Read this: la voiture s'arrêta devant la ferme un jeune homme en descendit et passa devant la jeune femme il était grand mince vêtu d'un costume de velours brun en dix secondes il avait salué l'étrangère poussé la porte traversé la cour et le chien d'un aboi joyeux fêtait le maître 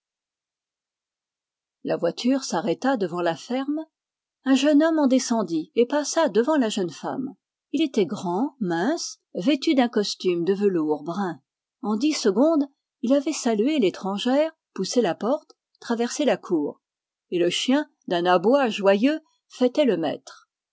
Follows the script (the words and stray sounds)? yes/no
yes